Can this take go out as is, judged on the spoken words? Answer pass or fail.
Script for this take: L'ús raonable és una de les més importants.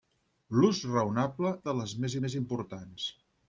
fail